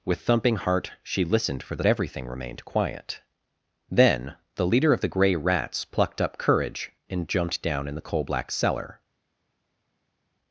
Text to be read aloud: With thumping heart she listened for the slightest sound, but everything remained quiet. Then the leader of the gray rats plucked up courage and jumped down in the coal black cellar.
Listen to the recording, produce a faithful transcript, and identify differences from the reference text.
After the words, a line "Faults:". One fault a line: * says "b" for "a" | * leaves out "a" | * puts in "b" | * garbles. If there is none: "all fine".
With thumping heart she listened for the everything remained quiet. Then the leader of the gray rats plucked up courage and jumped down in the coal black cellar.
Faults:
* leaves out "slightest sound but"